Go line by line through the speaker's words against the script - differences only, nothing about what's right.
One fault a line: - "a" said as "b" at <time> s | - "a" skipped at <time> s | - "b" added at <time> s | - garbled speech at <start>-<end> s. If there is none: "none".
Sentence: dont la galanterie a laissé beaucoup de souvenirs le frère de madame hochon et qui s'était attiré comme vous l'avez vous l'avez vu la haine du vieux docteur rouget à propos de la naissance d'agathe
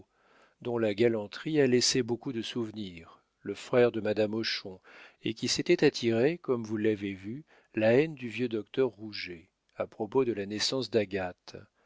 - "vous l'avez" skipped at 7.1 s